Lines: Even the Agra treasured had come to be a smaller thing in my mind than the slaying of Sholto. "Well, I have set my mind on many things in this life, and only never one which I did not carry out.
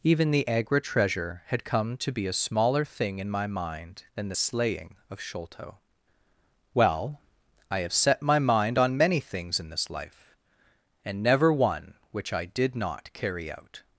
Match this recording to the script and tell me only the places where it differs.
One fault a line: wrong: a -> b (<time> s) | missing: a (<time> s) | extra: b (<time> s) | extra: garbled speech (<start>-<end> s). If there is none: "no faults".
wrong: treasured -> treasure (0.8 s)
missing: only (11.2 s)